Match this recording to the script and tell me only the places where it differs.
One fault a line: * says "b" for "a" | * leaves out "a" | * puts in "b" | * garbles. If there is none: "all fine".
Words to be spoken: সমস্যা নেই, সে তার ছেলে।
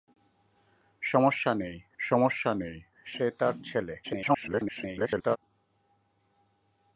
* puts in "সমস্যা নেই"
* garbles